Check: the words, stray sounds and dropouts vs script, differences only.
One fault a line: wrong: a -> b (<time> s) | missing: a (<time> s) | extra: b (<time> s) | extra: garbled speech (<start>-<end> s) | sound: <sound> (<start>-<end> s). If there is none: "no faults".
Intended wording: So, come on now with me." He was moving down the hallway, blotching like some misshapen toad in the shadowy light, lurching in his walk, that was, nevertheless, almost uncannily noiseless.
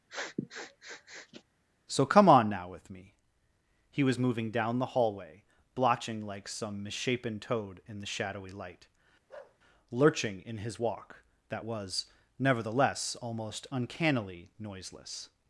sound: sniff (0.1-1.4 s)
sound: bark (9.3-9.6 s)